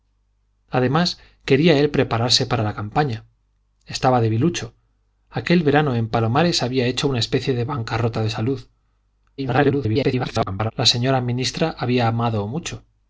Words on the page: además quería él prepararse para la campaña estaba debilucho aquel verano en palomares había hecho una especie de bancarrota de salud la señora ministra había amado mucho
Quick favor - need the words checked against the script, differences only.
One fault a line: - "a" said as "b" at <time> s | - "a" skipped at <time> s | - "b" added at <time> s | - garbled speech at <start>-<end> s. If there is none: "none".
- garbled speech at 9.4-10.7 s